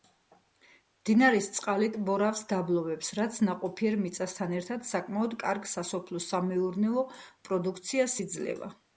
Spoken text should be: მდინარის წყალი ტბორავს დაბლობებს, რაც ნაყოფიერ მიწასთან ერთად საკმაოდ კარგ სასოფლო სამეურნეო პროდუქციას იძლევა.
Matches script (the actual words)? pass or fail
pass